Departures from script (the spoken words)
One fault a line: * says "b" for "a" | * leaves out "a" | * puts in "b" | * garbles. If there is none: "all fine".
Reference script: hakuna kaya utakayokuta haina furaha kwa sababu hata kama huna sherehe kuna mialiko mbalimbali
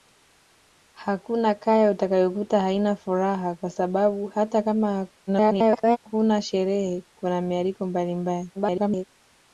* garbles
* garbles